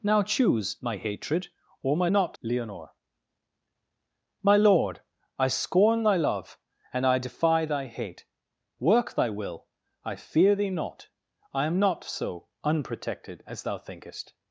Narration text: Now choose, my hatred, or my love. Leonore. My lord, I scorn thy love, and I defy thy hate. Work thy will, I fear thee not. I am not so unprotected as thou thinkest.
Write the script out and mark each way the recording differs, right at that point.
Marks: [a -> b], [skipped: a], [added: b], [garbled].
Now choose, my hatred, or my [love. -> not] Leonore. My lord, I scorn thy love, and I defy thy hate. Work thy will, I fear thee not. I am not so unprotected as thou thinkest.